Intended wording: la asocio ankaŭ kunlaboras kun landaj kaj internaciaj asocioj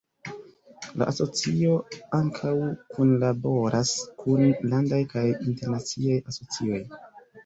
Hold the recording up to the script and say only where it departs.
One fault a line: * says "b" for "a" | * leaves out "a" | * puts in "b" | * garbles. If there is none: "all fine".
all fine